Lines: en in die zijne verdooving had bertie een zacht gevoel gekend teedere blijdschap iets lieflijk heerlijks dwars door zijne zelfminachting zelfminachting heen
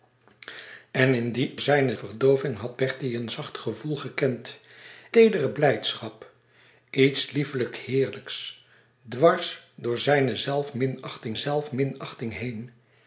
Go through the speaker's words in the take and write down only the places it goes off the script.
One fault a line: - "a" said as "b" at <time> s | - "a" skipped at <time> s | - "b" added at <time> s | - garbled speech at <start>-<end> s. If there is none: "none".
none